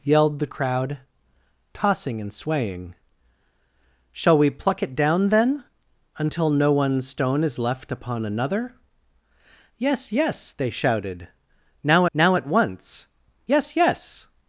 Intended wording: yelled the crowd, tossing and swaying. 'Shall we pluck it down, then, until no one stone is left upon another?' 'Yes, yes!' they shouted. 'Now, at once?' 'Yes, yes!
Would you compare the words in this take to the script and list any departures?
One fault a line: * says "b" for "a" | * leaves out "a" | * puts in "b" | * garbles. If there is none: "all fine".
* puts in "now"